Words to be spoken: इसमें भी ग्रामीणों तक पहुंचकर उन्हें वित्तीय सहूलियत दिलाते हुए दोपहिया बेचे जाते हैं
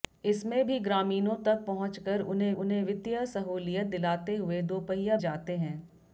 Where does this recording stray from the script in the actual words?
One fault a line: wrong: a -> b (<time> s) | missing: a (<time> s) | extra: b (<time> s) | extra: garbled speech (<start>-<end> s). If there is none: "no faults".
extra: उन्हें (2.5 s)
missing: बेचे (5.2 s)